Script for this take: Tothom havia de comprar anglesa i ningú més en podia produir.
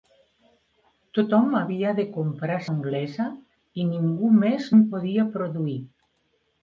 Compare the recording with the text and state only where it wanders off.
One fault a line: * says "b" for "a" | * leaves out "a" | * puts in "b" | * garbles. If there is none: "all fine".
all fine